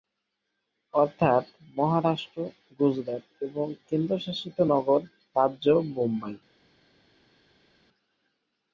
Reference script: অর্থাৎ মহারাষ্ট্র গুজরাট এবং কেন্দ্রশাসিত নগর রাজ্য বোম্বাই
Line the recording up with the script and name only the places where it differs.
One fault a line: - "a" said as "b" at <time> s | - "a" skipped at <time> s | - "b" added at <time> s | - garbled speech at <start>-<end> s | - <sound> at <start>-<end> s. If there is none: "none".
none